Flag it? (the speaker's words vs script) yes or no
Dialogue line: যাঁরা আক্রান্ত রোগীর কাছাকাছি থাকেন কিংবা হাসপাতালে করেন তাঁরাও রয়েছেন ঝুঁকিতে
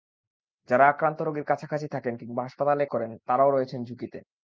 no